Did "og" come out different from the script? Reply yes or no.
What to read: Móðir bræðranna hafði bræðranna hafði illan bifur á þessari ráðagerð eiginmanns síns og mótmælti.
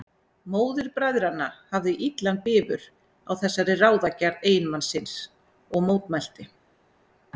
no